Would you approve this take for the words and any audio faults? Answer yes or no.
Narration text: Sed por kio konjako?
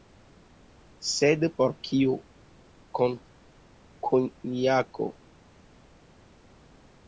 yes